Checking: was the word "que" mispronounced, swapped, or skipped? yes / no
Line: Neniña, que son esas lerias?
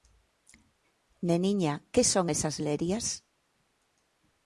no